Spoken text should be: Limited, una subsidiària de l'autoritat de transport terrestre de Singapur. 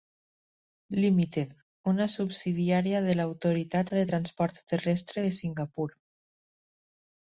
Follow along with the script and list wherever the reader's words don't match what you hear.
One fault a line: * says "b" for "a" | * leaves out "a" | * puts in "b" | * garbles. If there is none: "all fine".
all fine